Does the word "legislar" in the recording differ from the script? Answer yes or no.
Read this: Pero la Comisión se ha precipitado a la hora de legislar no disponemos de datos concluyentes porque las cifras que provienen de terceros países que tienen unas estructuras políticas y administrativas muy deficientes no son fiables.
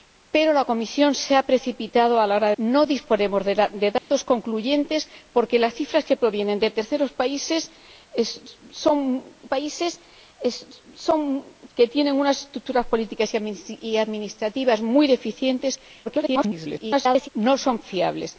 yes